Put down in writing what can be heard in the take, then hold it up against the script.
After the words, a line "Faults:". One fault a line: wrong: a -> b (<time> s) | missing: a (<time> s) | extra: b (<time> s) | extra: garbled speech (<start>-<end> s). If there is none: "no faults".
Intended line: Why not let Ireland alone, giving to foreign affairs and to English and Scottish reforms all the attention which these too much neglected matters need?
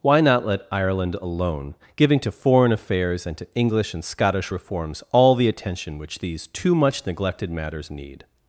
Why not let Ireland alone, giving to foreign affairs and to English and Scottish reforms all the attention which these too much neglected matters need?
Faults:
no faults